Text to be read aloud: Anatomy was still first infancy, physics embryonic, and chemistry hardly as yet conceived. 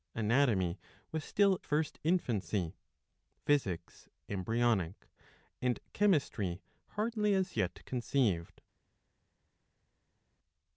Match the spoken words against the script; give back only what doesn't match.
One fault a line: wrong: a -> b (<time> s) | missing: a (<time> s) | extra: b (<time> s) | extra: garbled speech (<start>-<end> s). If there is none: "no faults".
no faults